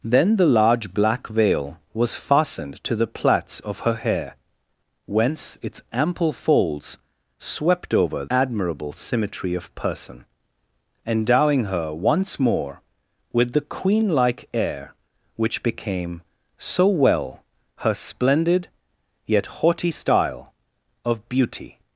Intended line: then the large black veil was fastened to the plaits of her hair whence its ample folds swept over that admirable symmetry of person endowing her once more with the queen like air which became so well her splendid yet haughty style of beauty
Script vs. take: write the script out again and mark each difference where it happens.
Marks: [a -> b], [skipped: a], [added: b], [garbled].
then the large black veil was fastened to the plaits of her hair whence its ample folds swept over [skipped: that] admirable symmetry of person endowing her once more with the queen like air which became so well her splendid yet haughty style of beauty